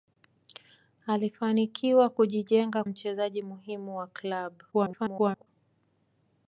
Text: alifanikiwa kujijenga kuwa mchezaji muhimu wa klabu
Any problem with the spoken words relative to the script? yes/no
yes